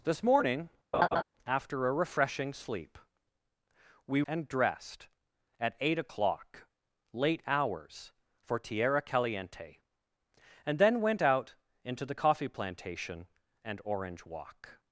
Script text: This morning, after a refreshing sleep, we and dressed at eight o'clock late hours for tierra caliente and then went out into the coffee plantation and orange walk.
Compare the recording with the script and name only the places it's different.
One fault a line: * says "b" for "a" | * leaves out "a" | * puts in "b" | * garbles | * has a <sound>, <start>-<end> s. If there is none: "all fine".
* has a laugh, 0.9-1.2 s